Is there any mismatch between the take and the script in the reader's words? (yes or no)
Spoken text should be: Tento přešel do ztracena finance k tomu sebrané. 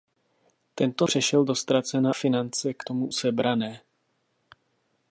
no